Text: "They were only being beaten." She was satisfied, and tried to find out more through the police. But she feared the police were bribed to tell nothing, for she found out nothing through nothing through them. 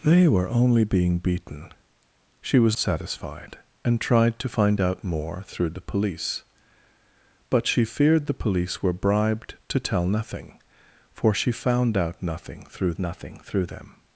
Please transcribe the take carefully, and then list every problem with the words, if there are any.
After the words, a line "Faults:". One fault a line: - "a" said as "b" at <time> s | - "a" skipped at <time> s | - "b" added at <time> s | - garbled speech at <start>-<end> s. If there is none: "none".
"They were only being beaten." She was satisfied, and tried to find out more through the police. But she feared the police were bribed to tell nothing, for she found out nothing through nothing through them.
Faults:
none